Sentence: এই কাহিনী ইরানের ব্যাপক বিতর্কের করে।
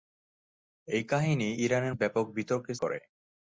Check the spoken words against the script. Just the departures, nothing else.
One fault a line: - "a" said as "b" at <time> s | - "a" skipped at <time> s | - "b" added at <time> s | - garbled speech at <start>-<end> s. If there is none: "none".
none